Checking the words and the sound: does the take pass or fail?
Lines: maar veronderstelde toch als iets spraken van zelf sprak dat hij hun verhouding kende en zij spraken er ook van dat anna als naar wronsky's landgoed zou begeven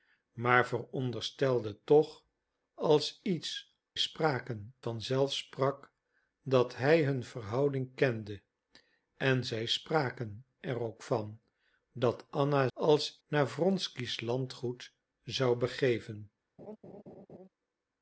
fail